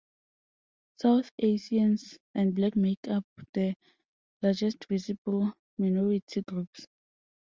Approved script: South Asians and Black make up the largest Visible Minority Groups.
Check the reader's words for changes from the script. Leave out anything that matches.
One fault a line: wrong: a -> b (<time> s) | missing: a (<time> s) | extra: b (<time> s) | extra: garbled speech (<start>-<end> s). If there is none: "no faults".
no faults